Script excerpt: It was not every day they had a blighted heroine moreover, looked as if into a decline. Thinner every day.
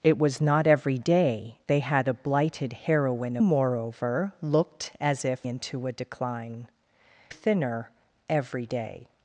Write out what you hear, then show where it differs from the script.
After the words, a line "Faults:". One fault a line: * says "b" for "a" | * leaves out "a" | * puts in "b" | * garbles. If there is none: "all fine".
It was not every day they had a blighted heroine moreover, looked as if into a decline. Thinner every day.
Faults:
all fine